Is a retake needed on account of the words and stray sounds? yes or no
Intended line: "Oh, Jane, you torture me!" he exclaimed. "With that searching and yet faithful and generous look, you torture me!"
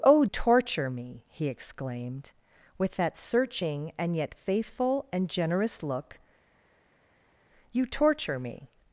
yes